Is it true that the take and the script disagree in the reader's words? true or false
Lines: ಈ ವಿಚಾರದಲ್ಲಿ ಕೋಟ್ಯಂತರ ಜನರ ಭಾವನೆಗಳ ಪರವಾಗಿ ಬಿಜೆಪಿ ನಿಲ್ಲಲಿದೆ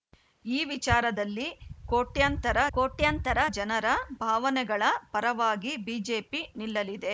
true